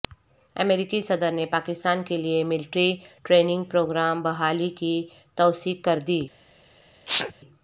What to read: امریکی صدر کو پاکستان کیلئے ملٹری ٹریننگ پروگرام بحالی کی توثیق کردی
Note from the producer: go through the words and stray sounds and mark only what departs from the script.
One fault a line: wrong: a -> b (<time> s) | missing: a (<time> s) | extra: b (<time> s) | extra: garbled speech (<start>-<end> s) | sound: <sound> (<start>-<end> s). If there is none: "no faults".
wrong: کو -> نے (1.3 s)
sound: sneeze (7.1-7.3 s)